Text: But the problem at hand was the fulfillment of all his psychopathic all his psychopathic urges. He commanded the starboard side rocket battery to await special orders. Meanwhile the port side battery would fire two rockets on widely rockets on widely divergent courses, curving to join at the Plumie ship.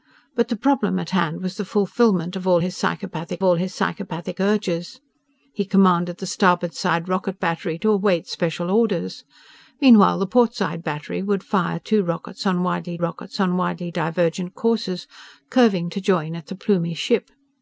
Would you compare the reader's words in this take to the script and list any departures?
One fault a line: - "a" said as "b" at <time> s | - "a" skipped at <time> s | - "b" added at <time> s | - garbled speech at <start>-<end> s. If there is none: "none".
none